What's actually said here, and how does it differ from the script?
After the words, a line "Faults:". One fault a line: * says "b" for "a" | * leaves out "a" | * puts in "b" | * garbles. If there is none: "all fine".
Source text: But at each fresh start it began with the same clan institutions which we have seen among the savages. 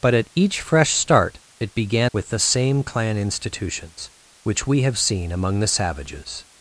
But at each fresh start it began with the same clan institutions which we have seen among the savages.
Faults:
all fine